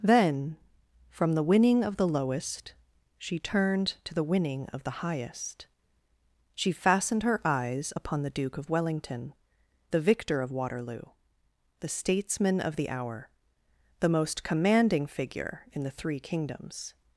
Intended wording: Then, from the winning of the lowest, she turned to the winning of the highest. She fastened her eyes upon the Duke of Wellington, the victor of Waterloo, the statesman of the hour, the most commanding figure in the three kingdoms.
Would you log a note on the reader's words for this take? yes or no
no